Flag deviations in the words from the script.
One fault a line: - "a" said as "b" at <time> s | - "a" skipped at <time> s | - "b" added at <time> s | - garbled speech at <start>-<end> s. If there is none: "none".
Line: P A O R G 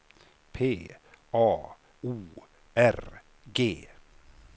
none